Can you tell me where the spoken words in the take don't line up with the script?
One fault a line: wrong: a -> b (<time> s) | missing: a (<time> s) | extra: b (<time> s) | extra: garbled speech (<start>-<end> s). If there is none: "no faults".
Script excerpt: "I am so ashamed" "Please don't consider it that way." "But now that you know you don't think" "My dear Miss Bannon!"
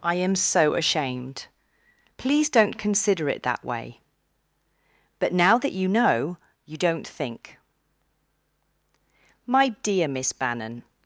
no faults